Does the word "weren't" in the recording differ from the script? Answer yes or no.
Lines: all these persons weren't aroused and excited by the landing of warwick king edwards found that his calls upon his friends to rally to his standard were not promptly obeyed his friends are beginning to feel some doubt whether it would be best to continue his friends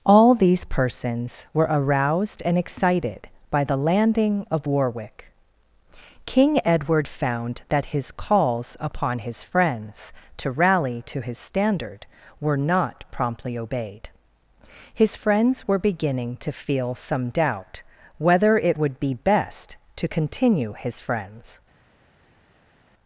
yes